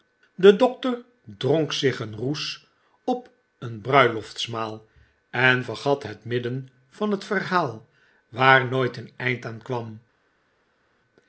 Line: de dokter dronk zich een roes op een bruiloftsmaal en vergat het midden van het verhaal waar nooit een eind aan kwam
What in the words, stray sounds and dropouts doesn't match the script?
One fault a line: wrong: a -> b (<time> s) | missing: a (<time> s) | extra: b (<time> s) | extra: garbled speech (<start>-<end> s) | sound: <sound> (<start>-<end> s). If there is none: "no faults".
no faults